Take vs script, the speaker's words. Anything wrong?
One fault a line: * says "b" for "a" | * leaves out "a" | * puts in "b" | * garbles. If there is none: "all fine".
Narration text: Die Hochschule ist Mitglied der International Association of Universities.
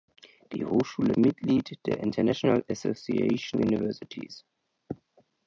* leaves out "ist"
* leaves out "of"